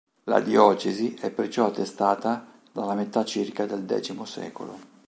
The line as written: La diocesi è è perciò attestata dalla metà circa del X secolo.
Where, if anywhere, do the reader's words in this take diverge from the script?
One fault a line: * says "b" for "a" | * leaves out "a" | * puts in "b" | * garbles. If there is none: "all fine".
* leaves out "è"